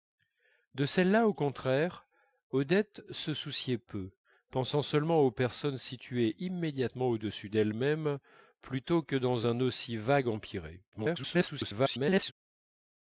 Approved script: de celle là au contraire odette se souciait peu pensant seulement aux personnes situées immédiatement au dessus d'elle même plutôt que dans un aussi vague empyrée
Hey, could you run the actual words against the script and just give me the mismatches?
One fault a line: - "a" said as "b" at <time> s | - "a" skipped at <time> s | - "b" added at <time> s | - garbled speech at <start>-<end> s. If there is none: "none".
- garbled speech at 10.9-12.3 s